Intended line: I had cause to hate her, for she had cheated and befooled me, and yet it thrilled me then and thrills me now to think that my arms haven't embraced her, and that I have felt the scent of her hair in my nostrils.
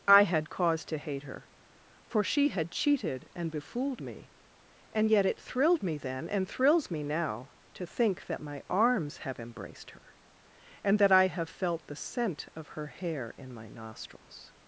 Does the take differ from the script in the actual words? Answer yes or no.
yes